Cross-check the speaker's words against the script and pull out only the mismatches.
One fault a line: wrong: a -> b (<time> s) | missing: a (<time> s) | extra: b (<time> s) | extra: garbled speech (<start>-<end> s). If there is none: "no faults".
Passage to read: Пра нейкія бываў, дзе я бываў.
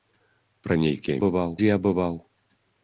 no faults